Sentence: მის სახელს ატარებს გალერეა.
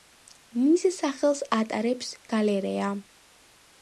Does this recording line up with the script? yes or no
yes